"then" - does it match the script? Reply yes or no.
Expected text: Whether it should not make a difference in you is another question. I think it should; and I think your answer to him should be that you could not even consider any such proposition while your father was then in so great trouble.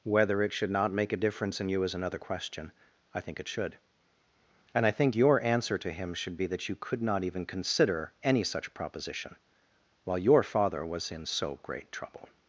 no